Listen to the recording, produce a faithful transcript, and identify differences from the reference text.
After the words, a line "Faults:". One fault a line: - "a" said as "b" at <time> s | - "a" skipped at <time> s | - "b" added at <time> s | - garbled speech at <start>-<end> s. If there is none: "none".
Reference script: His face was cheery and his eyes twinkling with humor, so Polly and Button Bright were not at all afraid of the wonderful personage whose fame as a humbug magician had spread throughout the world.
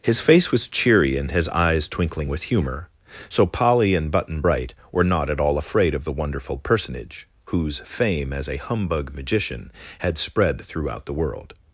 His face was cheery and his eyes twinkling with humor, so Polly and Button Bright were not at all afraid of the wonderful personage whose fame as a humbug magician had spread throughout the world.
Faults:
none